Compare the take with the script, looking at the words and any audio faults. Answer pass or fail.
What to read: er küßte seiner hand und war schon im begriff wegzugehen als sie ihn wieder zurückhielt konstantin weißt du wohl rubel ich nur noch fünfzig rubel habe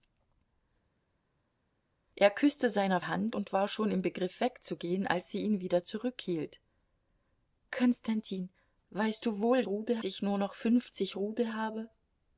pass